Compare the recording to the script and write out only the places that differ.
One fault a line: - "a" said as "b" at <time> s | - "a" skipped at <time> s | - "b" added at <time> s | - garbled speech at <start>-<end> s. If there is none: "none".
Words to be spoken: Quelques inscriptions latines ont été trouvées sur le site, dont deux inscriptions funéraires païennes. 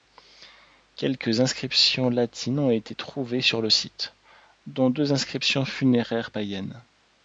none